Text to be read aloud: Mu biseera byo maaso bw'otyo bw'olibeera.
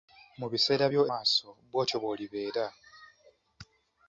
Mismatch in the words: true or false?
false